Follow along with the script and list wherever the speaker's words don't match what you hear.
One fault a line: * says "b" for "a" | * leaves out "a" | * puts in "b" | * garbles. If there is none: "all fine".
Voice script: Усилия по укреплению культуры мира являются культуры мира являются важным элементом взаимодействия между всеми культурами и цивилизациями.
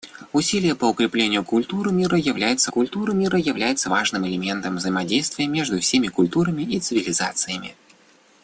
all fine